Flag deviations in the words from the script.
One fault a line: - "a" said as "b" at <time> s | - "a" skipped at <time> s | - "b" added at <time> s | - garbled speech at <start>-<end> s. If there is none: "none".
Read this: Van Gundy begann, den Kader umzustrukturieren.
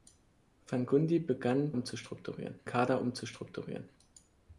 - "den" said as "umzustrukturieren" at 1.7 s